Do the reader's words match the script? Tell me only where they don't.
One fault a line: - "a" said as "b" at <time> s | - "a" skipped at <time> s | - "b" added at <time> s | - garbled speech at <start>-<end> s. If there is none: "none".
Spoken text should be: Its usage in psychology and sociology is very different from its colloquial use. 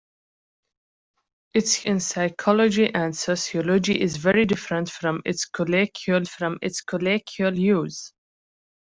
- "usage" skipped at 1.9 s
- "from its colloquial" added at 6.3 s